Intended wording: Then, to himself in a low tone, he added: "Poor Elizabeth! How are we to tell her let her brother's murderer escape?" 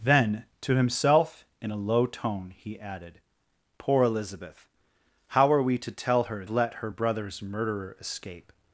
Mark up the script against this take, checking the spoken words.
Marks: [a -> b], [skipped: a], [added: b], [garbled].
Then, to himself in a low tone, he added: "Poor Elizabeth! How are we to tell her let her brother's murderer escape?"